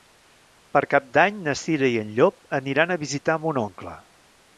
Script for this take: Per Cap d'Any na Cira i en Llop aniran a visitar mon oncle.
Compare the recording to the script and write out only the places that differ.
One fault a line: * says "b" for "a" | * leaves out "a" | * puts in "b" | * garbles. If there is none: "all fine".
all fine